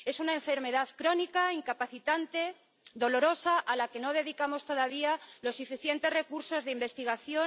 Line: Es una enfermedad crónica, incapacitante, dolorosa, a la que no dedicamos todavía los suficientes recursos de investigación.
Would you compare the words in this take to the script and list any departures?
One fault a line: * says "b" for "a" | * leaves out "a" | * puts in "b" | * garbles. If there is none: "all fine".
all fine